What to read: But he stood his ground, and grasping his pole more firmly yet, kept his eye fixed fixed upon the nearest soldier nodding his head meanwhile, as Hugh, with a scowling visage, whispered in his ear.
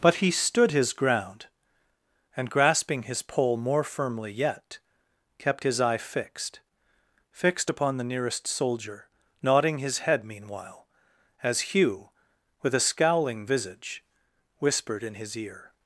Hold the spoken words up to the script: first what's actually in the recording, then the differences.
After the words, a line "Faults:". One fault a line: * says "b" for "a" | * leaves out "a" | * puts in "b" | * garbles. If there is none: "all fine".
But he stood his ground, and grasping his pole more firmly yet, kept his eye fixed fixed upon the nearest soldier nodding his head meanwhile, as Hugh, with a scowling visage, whispered in his ear.
Faults:
all fine